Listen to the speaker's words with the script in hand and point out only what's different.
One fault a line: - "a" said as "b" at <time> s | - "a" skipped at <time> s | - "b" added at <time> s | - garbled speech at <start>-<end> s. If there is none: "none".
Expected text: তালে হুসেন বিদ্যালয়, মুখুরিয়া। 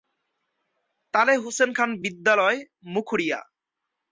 - "খান" added at 1.7 s